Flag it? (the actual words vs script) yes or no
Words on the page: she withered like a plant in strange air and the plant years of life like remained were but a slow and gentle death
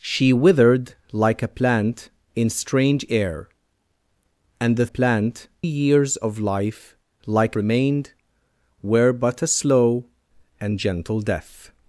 no